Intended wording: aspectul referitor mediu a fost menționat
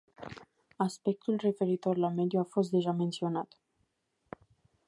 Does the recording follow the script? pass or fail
fail